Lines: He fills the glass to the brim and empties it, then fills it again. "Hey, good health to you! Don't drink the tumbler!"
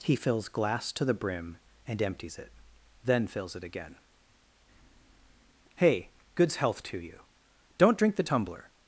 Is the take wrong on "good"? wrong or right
wrong